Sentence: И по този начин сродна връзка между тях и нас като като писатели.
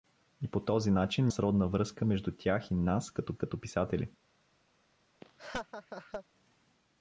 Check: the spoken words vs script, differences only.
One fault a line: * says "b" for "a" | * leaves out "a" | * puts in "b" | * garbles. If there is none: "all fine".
all fine